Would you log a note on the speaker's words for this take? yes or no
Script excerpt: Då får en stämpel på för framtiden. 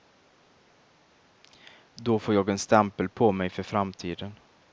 yes